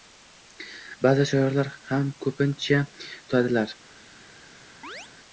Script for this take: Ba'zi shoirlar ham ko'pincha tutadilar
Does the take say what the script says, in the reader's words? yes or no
yes